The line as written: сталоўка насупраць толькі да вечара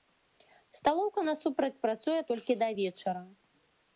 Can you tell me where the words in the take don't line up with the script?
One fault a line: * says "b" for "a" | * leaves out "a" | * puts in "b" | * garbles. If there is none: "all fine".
* puts in "працуе"